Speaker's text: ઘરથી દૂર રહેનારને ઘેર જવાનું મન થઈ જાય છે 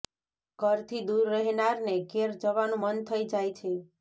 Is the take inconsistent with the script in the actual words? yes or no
no